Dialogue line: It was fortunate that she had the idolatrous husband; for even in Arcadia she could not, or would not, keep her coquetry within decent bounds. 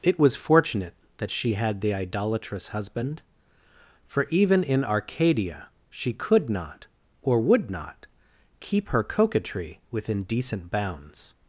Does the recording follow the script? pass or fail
pass